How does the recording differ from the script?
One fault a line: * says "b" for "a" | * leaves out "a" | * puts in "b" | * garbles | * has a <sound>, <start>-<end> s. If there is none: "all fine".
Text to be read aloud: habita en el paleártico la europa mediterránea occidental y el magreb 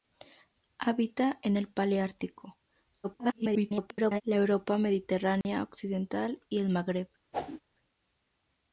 * garbles
* has a dropout, 5.4-5.4 s
* has a whoosh, 7.3-7.6 s